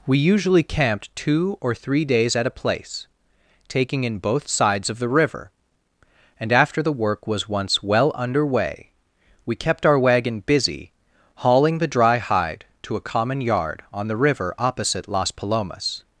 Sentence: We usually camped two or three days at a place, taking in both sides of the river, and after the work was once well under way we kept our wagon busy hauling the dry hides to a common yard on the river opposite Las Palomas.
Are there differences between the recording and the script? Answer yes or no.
yes